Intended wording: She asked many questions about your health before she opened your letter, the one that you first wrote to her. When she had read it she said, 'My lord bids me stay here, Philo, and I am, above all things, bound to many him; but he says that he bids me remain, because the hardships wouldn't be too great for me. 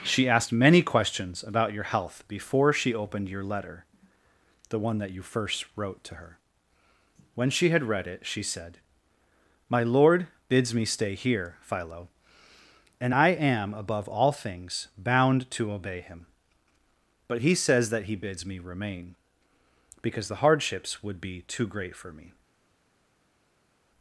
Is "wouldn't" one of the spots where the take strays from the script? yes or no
yes